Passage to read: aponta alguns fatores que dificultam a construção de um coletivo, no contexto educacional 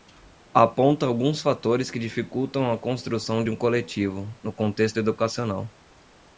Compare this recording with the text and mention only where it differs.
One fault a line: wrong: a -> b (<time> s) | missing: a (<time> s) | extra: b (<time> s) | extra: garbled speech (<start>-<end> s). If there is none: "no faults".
no faults